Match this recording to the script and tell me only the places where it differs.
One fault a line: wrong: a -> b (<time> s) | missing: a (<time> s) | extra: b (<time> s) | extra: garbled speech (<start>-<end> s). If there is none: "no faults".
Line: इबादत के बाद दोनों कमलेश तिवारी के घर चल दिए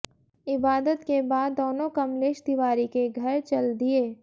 no faults